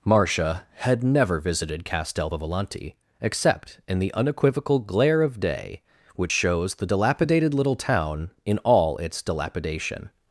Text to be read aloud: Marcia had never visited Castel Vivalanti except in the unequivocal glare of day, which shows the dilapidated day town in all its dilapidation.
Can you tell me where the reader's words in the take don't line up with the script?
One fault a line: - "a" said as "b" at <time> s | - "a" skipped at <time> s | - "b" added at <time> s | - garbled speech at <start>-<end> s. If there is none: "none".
- "day" said as "little" at 7.5 s